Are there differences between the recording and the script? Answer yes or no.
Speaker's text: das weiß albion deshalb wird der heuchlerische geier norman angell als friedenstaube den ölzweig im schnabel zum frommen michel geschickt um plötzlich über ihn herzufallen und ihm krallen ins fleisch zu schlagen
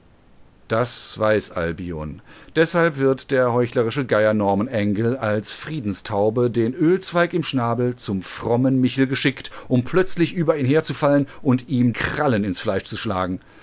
no